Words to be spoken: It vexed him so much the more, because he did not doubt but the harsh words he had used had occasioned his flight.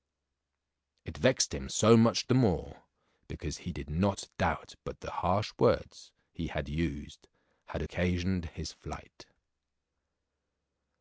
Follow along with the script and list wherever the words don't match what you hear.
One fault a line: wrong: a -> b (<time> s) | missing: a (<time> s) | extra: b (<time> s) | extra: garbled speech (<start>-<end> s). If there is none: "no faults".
no faults